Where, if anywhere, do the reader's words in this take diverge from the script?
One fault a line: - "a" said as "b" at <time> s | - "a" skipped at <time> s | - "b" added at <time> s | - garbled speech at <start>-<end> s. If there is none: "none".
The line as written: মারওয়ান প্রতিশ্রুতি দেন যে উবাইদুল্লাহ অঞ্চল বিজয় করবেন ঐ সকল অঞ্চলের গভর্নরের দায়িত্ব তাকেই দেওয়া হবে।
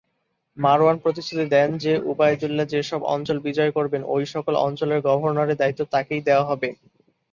- "যেসব" added at 2.7 s